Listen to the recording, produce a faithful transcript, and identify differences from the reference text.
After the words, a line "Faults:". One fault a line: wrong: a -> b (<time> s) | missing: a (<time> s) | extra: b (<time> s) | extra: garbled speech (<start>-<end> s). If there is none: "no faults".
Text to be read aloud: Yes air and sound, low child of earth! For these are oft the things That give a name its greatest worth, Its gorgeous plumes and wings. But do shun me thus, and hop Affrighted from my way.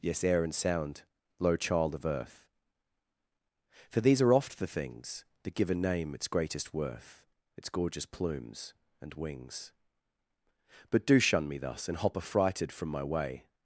Yes air and sound, low child of earth! For these are oft the things That give a name its greatest worth, Its gorgeous plumes and wings. But do shun me thus, and hop Affrighted from my way.
Faults:
no faults